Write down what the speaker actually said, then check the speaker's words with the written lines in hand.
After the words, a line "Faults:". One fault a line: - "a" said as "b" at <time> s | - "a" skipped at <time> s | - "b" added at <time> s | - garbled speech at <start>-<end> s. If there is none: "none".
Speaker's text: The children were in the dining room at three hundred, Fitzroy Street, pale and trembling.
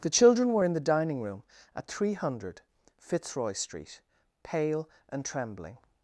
The children were in the dining room at three hundred, Fitzroy Street, pale and trembling.
Faults:
none